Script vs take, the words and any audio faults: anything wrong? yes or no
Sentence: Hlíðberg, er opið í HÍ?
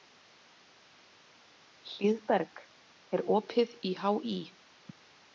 no